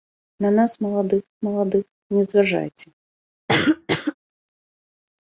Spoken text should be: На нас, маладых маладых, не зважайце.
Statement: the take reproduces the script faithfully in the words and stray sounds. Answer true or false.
false